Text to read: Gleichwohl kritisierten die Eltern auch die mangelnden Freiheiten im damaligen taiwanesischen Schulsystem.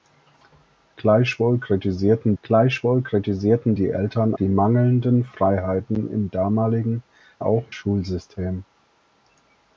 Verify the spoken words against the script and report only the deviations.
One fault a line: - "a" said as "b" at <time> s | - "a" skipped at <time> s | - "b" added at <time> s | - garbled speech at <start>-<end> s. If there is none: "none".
- "gleichwohl kritisierten" added at 2.4 s
- "auch" skipped at 4.3 s
- "taiwanesischen" said as "auch" at 7.4 s